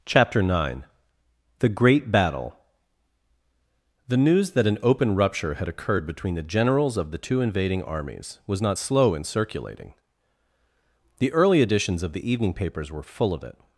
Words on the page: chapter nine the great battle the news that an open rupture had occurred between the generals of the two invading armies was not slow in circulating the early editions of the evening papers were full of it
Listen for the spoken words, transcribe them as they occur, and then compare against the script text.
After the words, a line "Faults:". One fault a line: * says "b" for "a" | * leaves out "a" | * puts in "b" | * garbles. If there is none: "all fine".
chapter nine the great battle the news that an open rupture had occurred between the generals of the two invading armies was not slow in circulating the early editions of the evening papers were full of it
Faults:
all fine